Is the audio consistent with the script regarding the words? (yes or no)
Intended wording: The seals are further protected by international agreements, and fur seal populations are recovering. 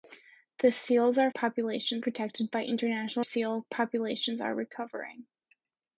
no